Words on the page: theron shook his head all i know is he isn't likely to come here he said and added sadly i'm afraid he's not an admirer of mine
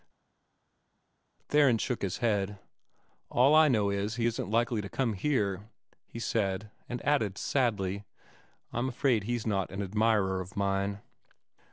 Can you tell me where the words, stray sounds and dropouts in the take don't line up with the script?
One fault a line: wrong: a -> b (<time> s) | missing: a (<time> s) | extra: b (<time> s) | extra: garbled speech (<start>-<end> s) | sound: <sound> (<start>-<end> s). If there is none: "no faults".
no faults